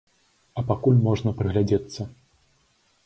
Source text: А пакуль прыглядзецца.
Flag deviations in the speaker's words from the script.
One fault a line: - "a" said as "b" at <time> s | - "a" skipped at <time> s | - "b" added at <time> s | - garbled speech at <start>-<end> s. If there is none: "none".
- "можна" added at 1.1 s